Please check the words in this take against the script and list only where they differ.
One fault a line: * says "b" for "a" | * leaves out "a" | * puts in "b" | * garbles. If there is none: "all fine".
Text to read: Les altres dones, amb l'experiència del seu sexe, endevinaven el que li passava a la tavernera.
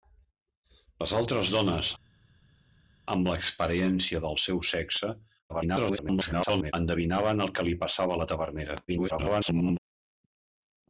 * garbles
* garbles